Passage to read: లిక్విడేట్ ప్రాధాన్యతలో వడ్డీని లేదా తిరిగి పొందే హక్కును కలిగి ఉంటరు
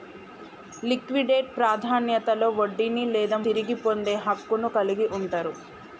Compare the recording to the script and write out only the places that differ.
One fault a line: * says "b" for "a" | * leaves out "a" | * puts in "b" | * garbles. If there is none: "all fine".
all fine